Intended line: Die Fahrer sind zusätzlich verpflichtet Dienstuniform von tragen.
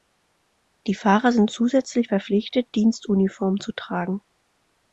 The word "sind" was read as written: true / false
true